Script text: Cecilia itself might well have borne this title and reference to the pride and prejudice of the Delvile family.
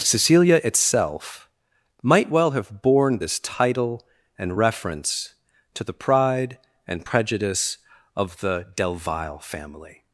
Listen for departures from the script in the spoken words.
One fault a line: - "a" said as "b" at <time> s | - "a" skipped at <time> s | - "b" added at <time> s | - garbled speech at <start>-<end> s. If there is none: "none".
none